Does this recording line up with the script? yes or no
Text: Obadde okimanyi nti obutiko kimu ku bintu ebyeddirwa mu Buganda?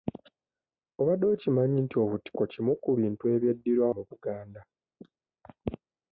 yes